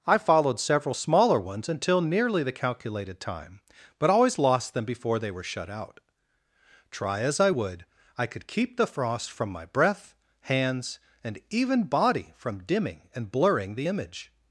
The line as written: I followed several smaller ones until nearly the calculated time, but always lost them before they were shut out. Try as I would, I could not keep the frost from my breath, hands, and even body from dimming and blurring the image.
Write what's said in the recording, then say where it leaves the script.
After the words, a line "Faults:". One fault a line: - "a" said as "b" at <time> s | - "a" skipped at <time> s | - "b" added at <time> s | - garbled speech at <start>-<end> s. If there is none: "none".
I followed several smaller ones until nearly the calculated time, but always lost them before they were shut out. Try as I would, I could keep the frost from my breath, hands, and even body from dimming and blurring the image.
Faults:
- "not" skipped at 8.5 s